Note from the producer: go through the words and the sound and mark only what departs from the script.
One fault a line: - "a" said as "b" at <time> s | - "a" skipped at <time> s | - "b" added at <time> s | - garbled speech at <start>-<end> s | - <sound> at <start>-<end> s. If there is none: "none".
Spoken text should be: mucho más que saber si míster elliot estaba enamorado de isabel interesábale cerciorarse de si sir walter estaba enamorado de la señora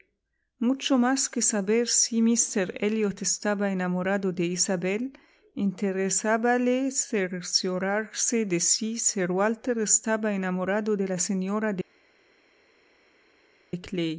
none